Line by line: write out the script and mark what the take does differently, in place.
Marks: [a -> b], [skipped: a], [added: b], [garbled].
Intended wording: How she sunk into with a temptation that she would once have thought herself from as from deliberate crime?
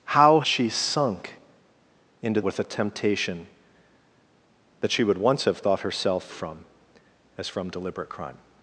How she sunk into with a temptation that she would once have thought herself from as from deliberate crime?